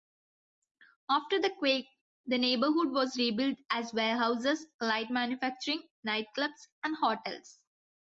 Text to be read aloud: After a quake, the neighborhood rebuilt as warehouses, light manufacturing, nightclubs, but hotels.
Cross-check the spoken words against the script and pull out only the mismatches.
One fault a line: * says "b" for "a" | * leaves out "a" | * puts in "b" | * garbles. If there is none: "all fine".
* says "the" for "a"
* puts in "was"
* says "and" for "but"